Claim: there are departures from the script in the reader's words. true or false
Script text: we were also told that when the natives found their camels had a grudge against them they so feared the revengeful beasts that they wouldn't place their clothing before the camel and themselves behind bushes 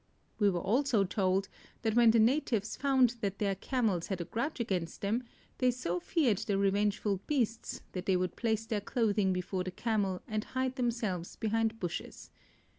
true